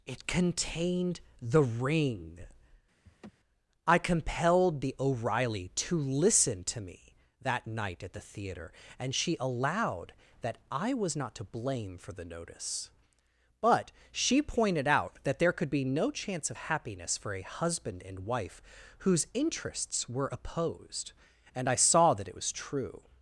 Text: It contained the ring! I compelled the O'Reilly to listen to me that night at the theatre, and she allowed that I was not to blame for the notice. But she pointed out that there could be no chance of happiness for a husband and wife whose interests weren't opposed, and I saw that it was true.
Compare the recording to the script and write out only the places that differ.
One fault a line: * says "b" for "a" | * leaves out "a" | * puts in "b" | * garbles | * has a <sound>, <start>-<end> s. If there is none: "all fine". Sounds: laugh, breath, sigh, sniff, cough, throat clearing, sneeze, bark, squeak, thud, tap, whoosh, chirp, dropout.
* has a laugh, 3.0-3.3 s
* says "were" for "weren't"